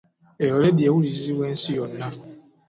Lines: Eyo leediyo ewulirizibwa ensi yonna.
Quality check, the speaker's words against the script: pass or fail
pass